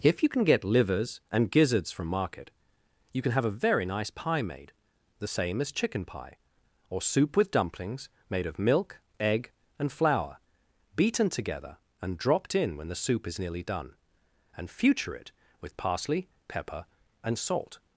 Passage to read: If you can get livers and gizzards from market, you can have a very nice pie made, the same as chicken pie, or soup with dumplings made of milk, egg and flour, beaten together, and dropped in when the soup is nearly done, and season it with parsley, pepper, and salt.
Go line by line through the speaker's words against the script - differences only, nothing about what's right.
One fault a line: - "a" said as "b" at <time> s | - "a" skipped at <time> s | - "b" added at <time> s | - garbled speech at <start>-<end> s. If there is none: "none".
- "season" said as "future" at 14.7 s